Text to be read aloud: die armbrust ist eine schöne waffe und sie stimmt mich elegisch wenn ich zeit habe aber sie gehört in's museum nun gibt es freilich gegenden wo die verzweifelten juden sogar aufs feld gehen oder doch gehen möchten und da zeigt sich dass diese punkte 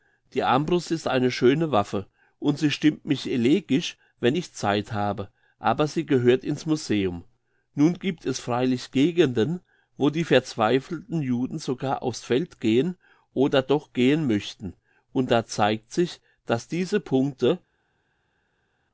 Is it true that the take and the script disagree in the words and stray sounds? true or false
false